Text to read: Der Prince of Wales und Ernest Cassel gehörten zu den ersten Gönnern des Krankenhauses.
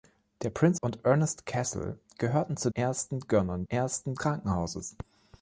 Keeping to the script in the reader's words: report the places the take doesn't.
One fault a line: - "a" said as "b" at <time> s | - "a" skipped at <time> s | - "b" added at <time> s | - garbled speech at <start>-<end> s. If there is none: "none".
- "of Wales" skipped at 0.8 s
- "den" skipped at 2.7 s
- "des" said as "ersten" at 3.7 s